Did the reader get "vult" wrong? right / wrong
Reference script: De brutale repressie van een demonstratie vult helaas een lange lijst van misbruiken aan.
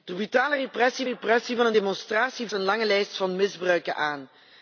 wrong